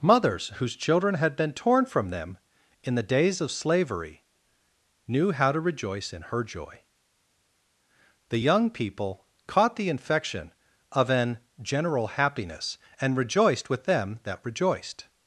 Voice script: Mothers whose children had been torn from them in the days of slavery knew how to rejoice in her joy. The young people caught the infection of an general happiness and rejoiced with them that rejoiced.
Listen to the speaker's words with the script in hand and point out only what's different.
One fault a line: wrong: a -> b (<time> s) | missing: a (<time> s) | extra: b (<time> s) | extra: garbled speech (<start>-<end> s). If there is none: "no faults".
no faults